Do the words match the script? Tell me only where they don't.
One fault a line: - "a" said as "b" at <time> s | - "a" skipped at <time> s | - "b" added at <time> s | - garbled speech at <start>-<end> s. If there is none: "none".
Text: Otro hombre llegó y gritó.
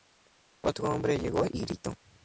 none